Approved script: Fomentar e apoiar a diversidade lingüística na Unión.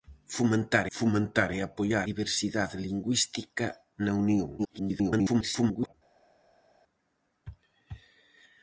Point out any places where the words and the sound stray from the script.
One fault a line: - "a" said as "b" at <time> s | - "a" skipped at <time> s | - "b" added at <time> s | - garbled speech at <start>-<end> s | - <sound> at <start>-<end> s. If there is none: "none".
- "fomentar" added at 1.0 s
- "a" skipped at 2.1 s
- garbled speech at 4.6-5.9 s